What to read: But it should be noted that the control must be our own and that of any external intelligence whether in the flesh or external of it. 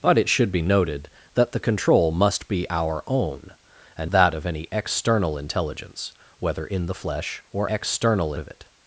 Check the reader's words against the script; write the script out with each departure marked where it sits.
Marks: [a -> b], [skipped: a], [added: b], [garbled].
But it should be noted that the control must be our own and that of any external intelligence whether in the flesh or external of it.